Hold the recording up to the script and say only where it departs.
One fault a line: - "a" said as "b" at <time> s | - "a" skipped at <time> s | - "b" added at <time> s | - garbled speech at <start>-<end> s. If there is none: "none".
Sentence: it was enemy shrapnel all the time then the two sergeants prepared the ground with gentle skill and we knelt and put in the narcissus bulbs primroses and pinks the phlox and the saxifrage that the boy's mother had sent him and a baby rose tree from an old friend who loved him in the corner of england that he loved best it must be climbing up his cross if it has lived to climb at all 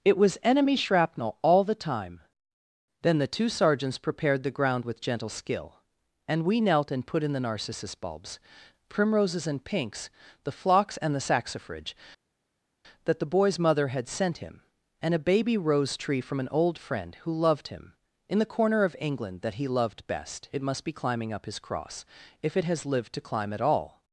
none